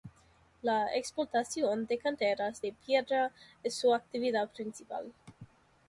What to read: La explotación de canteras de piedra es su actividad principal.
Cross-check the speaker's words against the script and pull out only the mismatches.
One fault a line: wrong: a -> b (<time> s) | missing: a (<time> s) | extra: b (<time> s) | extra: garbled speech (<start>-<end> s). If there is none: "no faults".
no faults